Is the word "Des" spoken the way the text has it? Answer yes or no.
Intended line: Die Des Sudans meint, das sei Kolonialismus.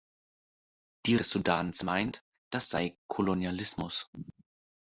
yes